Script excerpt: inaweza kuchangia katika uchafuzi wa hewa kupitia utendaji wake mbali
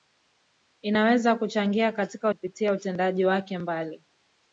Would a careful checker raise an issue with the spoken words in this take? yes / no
yes